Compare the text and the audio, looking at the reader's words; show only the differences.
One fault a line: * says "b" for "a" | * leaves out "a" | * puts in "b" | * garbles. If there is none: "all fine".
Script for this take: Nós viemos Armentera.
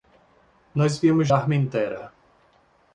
all fine